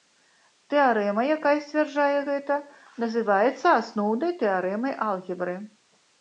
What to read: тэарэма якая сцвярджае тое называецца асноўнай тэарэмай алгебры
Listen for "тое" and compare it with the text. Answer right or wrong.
wrong